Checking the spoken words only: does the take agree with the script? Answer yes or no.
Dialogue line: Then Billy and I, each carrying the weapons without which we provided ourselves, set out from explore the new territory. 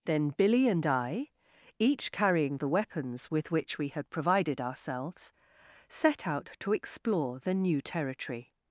no